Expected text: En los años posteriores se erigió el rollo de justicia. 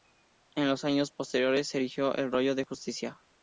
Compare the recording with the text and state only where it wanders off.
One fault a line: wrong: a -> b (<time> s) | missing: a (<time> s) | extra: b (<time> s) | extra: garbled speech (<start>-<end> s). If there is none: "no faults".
no faults